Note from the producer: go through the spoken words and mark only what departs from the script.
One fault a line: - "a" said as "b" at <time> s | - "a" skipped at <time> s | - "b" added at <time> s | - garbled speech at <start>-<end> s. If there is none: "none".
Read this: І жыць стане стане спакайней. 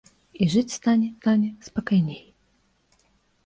none